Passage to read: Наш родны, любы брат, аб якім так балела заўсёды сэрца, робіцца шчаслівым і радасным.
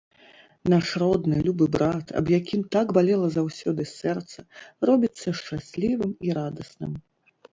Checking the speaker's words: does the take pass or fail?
pass